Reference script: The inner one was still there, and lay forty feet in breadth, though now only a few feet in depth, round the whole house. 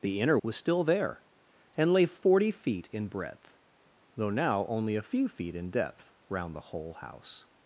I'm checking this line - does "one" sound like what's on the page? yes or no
no